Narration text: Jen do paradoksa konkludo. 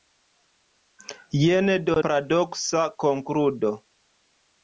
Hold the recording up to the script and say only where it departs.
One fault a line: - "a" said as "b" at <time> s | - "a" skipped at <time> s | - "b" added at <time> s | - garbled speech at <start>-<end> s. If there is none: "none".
none